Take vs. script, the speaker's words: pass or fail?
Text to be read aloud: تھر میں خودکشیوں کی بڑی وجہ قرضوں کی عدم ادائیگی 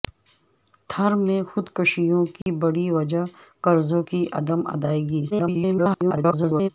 fail